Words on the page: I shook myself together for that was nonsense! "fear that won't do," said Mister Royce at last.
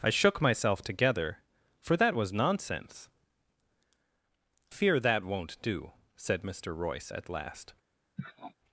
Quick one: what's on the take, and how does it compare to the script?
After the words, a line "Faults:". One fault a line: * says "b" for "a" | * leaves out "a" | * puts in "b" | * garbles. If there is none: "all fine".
I shook myself together for that was nonsense! "fear that won't do," said Mister Royce at last.
Faults:
all fine